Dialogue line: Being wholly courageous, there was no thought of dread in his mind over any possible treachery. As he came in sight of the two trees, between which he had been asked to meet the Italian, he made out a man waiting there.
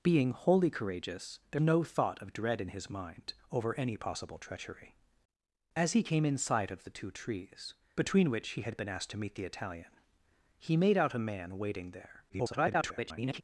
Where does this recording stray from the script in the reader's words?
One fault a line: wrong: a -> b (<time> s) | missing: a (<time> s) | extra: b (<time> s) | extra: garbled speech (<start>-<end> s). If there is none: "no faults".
missing: was (1.6 s)
extra: garbled speech (12.3-13.4 s)